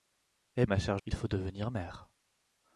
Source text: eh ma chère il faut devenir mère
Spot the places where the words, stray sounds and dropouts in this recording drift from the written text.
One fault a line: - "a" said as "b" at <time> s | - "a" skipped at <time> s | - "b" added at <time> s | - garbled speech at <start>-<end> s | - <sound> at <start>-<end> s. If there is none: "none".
none